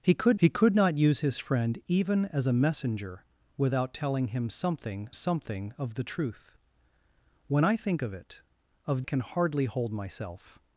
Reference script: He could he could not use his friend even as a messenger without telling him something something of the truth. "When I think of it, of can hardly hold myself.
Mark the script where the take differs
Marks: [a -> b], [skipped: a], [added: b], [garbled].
He could he could not use his friend even as a messenger without telling him something something of the truth. "When I think of it, of can hardly hold myself.